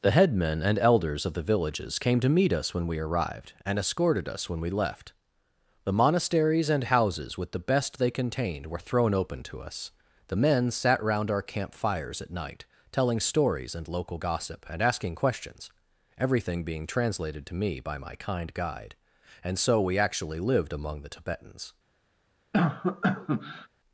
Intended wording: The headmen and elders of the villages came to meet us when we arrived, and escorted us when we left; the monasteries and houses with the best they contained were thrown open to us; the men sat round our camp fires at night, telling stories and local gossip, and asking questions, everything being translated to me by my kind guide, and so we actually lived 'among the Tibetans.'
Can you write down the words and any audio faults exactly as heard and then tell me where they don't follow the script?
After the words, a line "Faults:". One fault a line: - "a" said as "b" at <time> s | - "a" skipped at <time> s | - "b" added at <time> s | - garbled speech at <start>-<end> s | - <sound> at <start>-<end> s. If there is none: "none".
The headmen and elders of the villages came to meet us when we arrived, and escorted us when we left; the monasteries and houses with the best they contained were thrown open to us; the men sat round our camp fires at night, telling stories and local gossip, and asking questions, everything being translated to me by my kind guide, and so we actually lived 'among the Tibetans.'
Faults:
- cough at 22.5-23.7 s